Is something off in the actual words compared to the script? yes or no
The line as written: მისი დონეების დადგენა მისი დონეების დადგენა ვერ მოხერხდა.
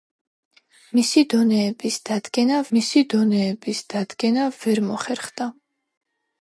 no